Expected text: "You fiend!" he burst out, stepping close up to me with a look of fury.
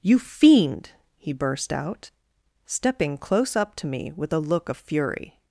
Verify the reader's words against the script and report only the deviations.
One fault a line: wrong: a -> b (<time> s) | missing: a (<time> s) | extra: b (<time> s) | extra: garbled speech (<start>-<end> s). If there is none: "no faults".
no faults